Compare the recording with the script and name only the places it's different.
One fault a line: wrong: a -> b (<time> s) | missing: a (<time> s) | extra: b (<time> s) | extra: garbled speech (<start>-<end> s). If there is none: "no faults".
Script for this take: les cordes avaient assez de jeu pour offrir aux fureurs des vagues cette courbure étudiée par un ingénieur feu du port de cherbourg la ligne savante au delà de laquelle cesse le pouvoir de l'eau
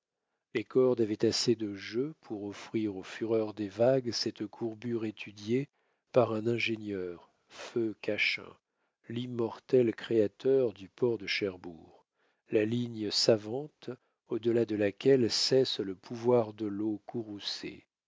extra: cachin l'immortel créateur (8.0 s)